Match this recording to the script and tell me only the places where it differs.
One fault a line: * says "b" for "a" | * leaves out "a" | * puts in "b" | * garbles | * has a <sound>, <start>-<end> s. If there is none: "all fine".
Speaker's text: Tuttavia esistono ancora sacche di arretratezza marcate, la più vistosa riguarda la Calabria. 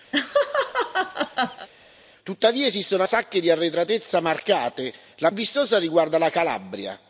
* has a laugh, 0.1-1.7 s
* leaves out "ancora"
* leaves out "più"